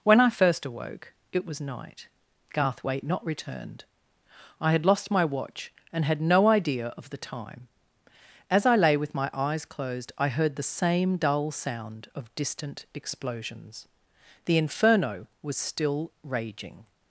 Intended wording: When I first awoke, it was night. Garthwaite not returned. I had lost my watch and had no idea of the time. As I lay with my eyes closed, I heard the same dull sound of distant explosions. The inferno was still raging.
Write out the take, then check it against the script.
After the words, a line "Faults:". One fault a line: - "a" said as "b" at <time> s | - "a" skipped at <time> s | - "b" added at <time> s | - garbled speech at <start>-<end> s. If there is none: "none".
When I first awoke, it was night. Garthwaite not returned. I had lost my watch and had no idea of the time. As I lay with my eyes closed, I heard the same dull sound of distant explosions. The inferno was still raging.
Faults:
none